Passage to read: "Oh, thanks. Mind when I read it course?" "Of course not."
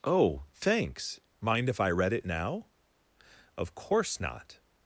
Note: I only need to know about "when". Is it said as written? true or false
false